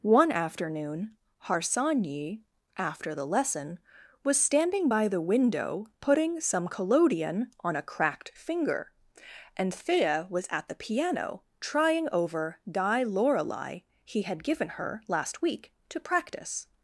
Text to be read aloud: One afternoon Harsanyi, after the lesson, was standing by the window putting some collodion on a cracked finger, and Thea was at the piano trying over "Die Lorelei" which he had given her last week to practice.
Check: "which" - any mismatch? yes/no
yes